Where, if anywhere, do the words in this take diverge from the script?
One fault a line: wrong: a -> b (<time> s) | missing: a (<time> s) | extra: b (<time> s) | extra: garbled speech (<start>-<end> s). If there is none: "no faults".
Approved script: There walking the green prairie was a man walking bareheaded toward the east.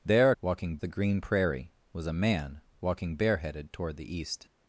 no faults